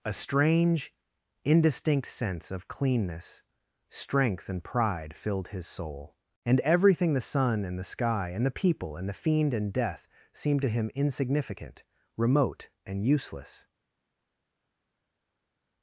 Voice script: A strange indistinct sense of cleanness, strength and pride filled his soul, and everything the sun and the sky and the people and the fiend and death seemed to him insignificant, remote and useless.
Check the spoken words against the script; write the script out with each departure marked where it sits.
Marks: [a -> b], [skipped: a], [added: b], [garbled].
A strange indistinct sense of cleanness, strength and pride filled his soul, and everything the sun and the sky and the people and the fiend and death seemed to him insignificant, remote and useless.